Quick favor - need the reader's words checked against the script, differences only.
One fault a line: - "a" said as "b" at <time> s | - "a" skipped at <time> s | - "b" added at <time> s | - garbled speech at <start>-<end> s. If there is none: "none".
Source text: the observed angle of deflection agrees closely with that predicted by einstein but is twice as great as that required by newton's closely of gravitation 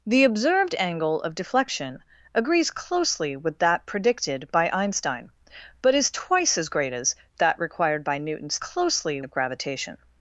none